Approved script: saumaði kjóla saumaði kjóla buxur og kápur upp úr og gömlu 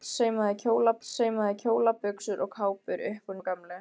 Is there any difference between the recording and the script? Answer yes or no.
no